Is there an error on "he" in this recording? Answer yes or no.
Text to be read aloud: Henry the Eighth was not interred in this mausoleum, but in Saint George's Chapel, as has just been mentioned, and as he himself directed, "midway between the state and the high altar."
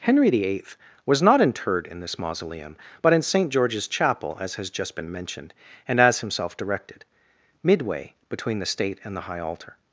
yes